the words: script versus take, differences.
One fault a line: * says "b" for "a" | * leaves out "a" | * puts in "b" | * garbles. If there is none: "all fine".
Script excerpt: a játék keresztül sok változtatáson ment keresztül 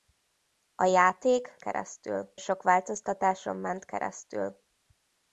all fine